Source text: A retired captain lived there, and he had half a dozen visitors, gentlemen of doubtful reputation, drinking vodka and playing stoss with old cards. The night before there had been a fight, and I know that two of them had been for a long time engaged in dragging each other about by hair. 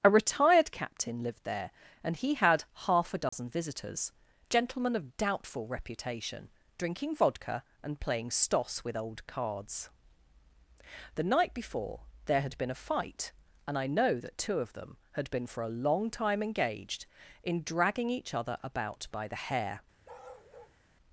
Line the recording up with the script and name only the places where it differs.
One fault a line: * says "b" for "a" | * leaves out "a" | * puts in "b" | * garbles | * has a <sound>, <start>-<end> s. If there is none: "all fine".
* has a dropout, 3.3-3.3 s
* puts in "the"
* has a bark, 20.0-20.8 s